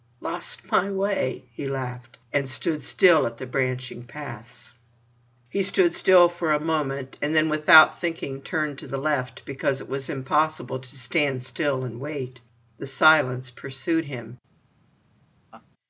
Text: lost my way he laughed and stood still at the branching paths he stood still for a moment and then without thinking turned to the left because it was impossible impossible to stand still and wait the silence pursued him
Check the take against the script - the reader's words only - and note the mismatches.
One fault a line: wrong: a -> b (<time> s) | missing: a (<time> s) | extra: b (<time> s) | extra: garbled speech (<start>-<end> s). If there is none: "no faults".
missing: impossible (10.8 s)